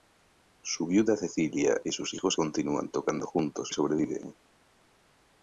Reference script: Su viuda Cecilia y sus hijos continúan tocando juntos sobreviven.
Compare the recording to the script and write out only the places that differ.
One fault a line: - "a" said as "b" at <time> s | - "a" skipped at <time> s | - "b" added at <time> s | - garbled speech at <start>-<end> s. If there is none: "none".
none